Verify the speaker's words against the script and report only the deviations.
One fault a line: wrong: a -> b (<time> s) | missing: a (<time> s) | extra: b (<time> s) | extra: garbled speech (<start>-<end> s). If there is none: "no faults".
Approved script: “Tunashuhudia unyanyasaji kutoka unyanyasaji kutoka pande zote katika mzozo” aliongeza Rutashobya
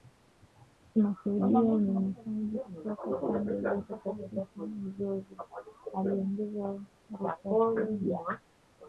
missing: unyanyasaji kutoka (3.2 s)